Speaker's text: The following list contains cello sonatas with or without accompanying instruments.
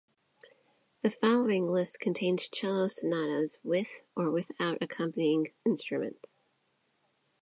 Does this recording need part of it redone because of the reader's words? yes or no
no